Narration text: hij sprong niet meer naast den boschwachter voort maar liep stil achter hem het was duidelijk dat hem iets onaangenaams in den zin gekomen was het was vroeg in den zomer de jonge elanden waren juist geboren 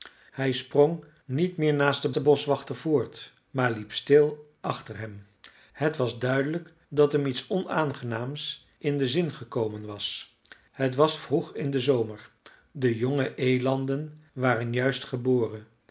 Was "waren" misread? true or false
false